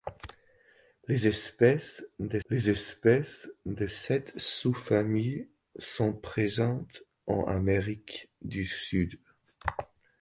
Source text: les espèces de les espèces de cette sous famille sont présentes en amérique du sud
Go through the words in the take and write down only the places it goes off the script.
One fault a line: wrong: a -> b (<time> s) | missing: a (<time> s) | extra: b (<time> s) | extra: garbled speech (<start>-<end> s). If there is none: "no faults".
no faults